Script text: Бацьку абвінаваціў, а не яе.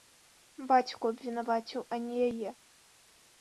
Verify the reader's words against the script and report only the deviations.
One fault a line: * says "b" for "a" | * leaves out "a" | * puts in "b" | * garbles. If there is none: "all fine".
all fine